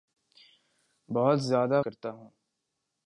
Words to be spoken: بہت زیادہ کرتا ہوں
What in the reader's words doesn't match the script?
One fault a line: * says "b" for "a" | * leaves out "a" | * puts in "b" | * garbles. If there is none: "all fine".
all fine